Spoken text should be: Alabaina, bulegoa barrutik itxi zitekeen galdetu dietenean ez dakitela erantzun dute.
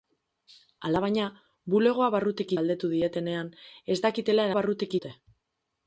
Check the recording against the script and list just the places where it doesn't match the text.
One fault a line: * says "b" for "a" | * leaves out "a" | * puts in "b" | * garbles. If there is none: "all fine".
* leaves out "itxi zitekeen"
* says "barrutik" for "erantzun"